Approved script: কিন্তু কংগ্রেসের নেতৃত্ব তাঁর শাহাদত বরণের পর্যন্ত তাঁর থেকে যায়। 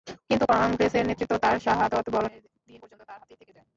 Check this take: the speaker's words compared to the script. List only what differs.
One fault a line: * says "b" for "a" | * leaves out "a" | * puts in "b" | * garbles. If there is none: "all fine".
* puts in "দিন"
* puts in "হাতেই"